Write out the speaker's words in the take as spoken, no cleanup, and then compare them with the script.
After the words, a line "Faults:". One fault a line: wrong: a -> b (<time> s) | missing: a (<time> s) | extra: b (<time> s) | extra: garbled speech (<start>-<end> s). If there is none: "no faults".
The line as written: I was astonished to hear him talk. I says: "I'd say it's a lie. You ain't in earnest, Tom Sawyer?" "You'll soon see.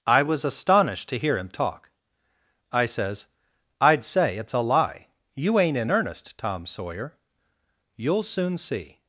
I was astonished to hear him talk. I says: "I'd say it's a lie. You ain't in earnest, Tom Sawyer?" "You'll soon see.
Faults:
no faults